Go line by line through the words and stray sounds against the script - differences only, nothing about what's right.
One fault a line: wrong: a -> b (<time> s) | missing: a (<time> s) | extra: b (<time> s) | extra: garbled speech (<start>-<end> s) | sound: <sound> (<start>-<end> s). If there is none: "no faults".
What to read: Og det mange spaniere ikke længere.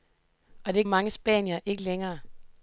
no faults